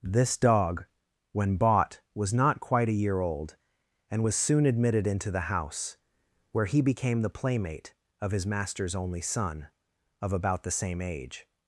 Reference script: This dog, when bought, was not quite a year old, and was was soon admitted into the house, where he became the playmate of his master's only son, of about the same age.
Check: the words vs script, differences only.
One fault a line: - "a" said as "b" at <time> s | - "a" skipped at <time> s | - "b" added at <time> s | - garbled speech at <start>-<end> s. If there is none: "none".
- "was" skipped at 4.4 s